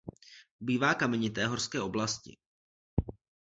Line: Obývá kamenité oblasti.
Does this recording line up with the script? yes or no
no